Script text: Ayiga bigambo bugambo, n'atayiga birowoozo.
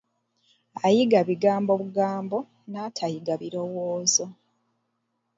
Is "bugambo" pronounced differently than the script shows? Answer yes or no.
no